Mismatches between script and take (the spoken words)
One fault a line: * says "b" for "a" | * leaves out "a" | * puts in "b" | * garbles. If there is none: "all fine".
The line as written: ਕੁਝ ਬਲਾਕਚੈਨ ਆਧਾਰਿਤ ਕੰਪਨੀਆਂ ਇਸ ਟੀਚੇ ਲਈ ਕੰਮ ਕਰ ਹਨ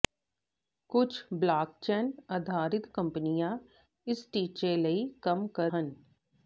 all fine